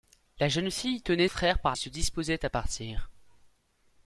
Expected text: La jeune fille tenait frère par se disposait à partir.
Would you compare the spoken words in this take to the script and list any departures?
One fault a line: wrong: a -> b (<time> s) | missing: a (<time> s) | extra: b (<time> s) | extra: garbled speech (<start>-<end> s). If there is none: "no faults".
no faults